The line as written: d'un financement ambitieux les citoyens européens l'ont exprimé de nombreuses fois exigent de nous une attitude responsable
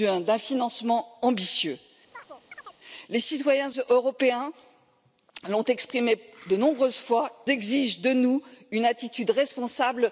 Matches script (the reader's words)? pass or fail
pass